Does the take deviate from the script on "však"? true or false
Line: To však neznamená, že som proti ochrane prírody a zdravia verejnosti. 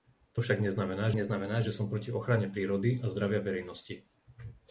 false